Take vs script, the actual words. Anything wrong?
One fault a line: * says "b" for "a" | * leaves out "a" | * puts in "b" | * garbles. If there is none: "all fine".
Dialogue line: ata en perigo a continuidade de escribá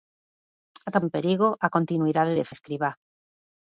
all fine